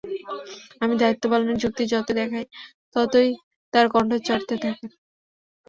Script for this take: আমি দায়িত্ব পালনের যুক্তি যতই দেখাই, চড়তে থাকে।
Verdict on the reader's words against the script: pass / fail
fail